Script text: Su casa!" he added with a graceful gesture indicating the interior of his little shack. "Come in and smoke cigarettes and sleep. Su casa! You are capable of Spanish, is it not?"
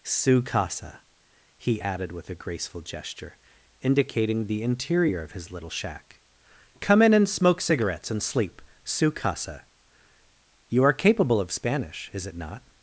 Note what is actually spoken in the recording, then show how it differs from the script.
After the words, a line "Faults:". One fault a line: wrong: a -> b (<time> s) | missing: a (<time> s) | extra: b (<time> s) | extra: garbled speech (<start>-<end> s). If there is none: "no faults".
Su casa!" he added with a graceful gesture indicating the interior of his little shack. "Come in and smoke cigarettes and sleep. Su casa! You are capable of Spanish, is it not?"
Faults:
no faults